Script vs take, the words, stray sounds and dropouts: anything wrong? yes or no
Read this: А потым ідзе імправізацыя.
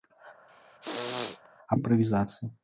yes